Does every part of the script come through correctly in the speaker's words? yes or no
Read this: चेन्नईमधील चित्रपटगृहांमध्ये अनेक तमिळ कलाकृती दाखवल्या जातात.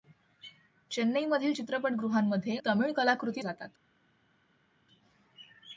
no